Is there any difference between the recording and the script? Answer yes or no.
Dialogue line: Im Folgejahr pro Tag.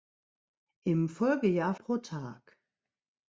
no